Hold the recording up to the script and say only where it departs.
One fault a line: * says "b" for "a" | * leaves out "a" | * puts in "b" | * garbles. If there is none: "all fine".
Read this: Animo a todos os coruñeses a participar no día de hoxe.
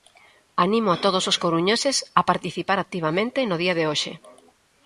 * puts in "activamente"